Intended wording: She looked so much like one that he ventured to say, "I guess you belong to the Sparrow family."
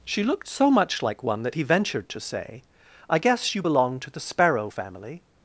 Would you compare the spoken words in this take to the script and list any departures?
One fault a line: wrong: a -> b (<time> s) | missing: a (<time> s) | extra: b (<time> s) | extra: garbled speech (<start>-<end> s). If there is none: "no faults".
no faults